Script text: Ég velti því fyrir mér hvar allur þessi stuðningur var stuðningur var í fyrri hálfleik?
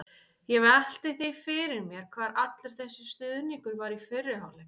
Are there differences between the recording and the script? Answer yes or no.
yes